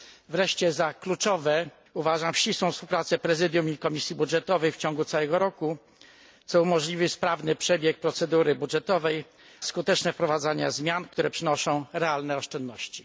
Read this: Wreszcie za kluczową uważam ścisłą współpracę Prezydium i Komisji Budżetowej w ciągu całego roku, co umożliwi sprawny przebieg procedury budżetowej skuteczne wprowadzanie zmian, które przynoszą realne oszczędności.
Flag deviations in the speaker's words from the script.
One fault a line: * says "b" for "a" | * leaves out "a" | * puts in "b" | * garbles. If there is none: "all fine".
all fine